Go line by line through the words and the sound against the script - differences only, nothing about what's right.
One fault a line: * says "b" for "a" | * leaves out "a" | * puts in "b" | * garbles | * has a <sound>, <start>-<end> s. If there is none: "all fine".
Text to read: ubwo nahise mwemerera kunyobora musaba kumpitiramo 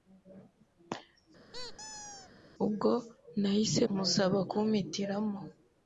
* has a squeak, 1.5-2.3 s
* leaves out "mwemerera kunyobora"